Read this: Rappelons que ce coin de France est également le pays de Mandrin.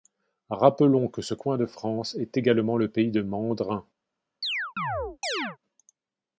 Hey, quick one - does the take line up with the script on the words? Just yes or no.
yes